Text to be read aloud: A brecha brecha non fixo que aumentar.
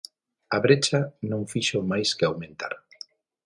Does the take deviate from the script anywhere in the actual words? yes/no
yes